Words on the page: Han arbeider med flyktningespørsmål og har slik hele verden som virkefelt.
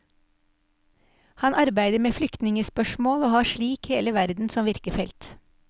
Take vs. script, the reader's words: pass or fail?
pass